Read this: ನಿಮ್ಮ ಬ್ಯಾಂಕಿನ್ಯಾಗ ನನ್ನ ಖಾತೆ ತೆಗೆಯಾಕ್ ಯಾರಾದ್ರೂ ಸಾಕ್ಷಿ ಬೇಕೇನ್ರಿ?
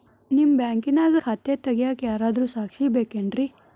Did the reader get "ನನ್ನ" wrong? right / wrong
wrong